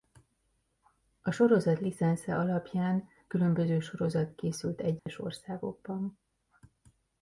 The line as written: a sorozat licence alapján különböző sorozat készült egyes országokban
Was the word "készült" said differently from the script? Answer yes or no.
no